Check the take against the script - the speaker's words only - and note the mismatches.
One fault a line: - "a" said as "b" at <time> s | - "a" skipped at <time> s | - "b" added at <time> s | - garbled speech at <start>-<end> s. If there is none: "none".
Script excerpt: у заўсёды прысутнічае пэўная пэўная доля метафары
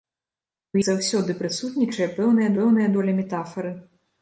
none